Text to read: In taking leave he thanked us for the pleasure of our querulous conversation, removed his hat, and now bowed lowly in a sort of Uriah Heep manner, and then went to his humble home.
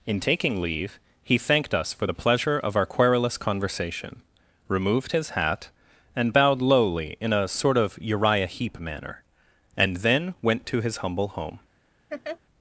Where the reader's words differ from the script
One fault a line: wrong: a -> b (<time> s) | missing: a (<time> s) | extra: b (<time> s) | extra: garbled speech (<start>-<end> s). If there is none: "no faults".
missing: now (6.3 s)